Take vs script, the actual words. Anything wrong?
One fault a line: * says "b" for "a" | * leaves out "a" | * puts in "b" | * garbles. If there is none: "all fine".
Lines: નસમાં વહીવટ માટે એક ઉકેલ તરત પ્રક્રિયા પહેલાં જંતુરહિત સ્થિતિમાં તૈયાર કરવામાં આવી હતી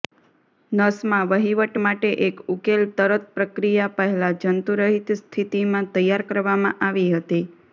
all fine